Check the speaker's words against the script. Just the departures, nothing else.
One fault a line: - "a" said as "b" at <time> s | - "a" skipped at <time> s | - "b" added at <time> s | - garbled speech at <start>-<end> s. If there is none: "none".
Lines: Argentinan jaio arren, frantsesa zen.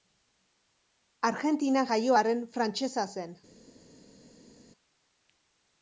none